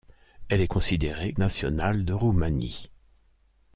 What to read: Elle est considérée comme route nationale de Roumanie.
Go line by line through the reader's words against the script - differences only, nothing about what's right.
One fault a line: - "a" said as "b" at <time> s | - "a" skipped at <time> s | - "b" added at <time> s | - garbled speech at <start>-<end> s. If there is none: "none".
- "comme route" skipped at 1.3 s